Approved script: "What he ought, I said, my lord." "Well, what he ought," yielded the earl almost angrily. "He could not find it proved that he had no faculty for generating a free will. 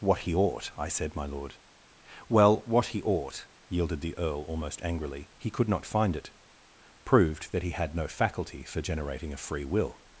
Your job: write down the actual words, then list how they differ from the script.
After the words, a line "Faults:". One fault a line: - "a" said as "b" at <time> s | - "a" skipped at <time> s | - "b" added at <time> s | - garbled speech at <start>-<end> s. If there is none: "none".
"What he ought, I said, my lord." "Well, what he ought," yielded the earl almost angrily. "He could not find it proved that he had no faculty for generating a free will.
Faults:
none